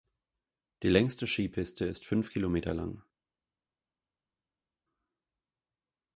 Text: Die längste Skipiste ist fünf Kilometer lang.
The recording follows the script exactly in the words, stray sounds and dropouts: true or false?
true